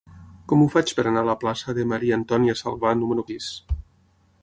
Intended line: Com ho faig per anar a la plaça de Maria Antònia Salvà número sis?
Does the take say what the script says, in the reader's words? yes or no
yes